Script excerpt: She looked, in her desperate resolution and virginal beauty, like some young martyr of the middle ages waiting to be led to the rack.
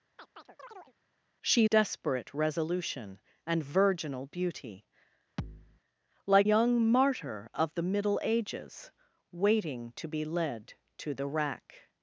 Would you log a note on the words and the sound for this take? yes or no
yes